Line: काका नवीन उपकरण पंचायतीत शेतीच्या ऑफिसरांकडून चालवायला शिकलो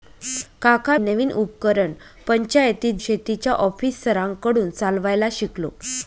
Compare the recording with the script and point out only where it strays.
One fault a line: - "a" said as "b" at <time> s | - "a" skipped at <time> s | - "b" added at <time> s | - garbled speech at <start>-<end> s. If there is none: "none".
none